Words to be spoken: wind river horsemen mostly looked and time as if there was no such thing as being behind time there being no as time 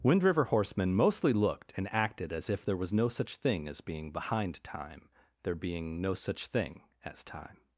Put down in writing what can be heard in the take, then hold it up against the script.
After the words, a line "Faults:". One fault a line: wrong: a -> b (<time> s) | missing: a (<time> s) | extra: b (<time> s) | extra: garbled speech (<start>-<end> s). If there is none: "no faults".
wind river horsemen mostly looked and acted as if there was no such thing as being behind time there being no such thing as time
Faults:
wrong: time -> acted (1.9 s)
extra: such thing (6.1 s)